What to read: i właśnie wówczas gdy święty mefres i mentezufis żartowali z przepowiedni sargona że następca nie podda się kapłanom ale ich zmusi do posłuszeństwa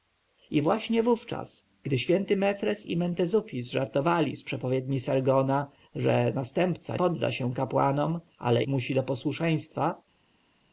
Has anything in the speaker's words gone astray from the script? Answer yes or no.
yes